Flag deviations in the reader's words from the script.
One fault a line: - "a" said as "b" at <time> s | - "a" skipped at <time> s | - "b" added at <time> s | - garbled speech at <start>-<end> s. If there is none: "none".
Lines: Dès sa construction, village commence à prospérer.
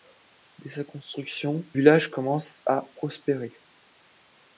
none